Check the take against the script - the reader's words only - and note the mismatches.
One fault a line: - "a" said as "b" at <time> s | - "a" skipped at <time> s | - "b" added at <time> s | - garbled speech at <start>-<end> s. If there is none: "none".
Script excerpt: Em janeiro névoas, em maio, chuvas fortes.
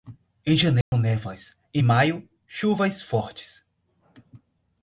none